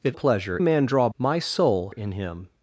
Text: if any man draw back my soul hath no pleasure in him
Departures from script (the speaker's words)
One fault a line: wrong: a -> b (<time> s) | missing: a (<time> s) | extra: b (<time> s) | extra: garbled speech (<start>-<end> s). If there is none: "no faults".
wrong: any -> pleasure (0.1 s)
missing: back (1.1 s)
missing: hath no pleasure (1.9 s)